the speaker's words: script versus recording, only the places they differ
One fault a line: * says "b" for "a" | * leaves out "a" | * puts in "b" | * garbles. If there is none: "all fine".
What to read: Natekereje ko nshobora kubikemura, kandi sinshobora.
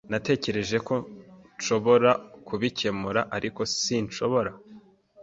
* says "ariko" for "kandi"